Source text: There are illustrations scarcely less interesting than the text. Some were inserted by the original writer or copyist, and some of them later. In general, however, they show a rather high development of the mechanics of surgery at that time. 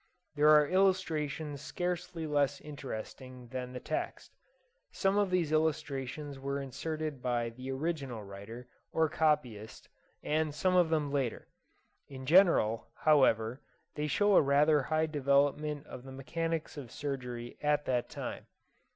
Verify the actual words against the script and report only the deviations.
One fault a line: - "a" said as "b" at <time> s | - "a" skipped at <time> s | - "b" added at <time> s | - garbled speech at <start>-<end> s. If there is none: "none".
- "of these illustrations" added at 5.2 s